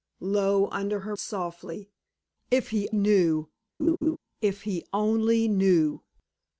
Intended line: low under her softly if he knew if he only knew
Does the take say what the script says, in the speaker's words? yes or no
yes